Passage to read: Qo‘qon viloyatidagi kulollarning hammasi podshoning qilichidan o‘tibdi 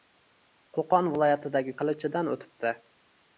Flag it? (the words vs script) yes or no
yes